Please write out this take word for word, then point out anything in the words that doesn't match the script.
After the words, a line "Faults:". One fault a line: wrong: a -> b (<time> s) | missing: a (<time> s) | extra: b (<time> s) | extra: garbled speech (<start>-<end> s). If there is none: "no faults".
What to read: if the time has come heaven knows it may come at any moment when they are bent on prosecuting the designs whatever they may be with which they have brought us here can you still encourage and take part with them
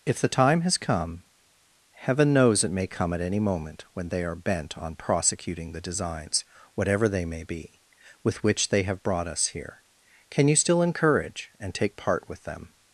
if the time has come heaven knows it may come at any moment when they are bent on prosecuting the designs whatever they may be with which they have brought us here can you still encourage and take part with them
Faults:
no faults